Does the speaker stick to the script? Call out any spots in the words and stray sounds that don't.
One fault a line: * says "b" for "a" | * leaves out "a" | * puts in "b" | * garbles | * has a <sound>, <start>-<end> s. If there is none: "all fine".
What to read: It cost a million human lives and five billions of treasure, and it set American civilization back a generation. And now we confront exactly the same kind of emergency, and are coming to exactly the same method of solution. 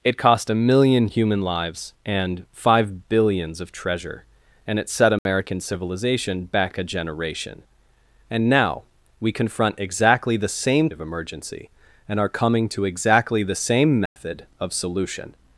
* has a dropout, 5.2-5.3 s
* leaves out "kind"
* has a dropout, 14.1-14.2 s